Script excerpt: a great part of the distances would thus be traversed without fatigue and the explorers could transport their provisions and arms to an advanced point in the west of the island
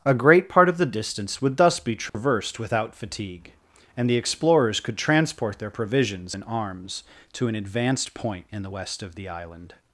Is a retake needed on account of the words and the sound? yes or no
yes